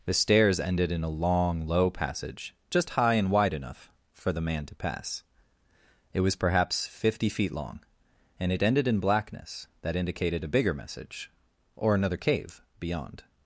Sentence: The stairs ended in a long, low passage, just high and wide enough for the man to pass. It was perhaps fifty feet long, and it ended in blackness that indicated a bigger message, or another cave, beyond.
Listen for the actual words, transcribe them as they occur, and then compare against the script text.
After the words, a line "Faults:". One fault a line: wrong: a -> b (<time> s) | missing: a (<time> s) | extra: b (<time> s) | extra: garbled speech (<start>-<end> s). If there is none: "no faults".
The stairs ended in a long, low passage, just high and wide enough for the man to pass. It was perhaps fifty feet long, and it ended in blackness that indicated a bigger message, or another cave, beyond.
Faults:
no faults